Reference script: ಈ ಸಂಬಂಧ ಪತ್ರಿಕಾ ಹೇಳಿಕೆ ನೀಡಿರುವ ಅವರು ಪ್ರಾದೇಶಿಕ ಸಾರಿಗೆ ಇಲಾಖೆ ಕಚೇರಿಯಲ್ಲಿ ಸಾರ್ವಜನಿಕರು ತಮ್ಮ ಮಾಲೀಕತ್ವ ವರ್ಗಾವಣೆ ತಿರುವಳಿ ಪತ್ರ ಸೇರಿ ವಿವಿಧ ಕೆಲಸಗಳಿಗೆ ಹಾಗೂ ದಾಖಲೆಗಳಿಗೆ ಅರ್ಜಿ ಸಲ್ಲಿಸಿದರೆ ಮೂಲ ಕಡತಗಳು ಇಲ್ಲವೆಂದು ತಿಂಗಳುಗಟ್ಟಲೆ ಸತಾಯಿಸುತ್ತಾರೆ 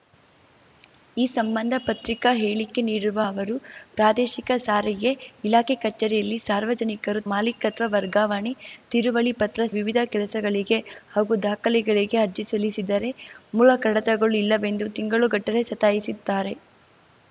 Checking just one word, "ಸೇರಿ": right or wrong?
wrong